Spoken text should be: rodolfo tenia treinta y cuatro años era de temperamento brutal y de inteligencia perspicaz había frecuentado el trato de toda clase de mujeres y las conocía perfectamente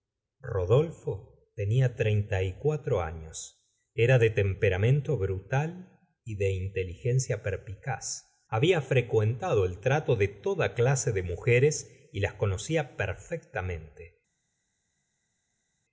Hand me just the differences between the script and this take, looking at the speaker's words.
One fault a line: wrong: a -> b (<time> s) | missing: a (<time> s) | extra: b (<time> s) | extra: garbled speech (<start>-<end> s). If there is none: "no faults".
no faults